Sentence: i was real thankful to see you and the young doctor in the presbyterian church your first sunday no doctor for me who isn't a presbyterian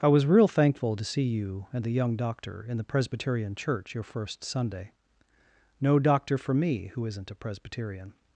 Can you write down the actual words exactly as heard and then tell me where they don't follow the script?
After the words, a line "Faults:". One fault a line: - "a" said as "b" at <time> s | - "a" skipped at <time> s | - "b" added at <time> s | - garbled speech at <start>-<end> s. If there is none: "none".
i was real thankful to see you and the young doctor in the presbyterian church your first sunday no doctor for me who isn't a presbyterian
Faults:
none